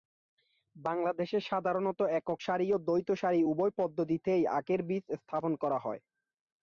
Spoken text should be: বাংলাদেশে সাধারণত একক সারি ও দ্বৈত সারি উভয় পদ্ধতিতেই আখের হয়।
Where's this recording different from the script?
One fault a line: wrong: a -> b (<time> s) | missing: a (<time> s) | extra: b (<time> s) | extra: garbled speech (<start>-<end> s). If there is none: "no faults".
extra: বীজ স্থাপন করা (4.9 s)